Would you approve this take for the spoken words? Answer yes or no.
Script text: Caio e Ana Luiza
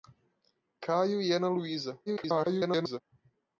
no